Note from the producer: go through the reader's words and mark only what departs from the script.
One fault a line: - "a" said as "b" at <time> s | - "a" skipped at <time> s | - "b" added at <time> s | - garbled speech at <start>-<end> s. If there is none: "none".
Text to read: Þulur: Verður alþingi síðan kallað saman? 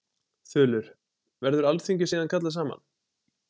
none